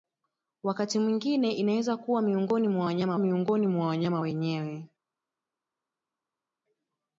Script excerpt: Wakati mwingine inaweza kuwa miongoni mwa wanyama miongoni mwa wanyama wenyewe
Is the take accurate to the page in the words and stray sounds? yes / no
yes